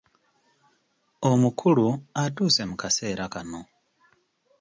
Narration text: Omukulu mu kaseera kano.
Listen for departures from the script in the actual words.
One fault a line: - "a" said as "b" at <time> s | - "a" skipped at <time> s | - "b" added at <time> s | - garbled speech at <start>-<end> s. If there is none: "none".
- "atuuse" added at 2.2 s